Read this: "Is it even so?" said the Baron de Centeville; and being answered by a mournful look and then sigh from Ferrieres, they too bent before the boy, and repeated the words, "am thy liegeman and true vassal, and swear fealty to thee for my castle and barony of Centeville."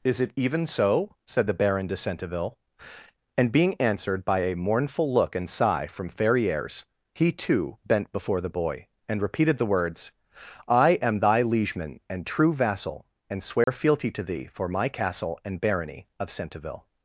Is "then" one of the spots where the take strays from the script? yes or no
yes